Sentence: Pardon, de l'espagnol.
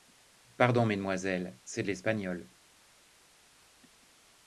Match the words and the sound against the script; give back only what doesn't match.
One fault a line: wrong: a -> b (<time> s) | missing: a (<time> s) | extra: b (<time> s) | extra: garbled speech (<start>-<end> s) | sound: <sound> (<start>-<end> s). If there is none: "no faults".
extra: mesdemoiselles c'est (0.9 s)